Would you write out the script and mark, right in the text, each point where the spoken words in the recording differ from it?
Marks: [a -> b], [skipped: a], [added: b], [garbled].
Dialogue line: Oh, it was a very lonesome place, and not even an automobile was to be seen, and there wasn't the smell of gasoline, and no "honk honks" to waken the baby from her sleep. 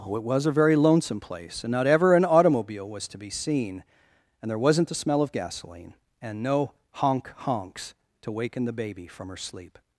Oh, it was a very lonesome place, and not [even -> ever] an automobile was to be seen, and there wasn't the smell of gasoline, and no "honk honks" to waken the baby from her sleep.